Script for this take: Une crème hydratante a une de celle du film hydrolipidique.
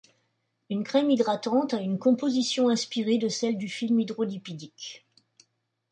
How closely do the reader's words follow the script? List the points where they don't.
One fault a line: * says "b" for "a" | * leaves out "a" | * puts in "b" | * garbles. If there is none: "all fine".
* puts in "composition inspirée"